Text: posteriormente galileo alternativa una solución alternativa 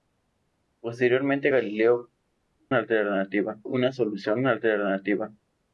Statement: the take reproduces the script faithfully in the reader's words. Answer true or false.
true